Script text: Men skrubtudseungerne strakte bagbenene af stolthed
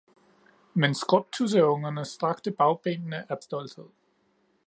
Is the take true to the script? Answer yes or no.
yes